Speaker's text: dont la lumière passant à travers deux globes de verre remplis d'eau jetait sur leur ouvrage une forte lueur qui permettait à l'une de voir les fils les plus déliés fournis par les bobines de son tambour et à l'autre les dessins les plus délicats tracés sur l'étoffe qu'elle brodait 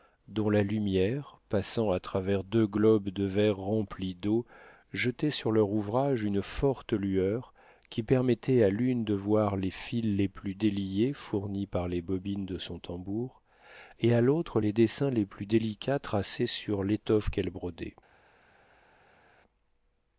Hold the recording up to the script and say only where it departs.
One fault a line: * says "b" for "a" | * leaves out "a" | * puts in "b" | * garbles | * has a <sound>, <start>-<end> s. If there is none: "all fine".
all fine